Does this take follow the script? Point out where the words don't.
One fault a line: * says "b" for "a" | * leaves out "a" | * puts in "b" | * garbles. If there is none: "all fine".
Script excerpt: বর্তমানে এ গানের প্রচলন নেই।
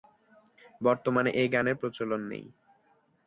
all fine